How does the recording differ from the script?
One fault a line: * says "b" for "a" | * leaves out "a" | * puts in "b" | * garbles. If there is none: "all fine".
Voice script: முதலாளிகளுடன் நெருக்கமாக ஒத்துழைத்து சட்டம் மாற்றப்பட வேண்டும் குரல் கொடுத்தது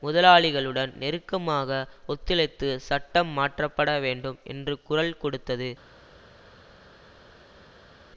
* puts in "என்று"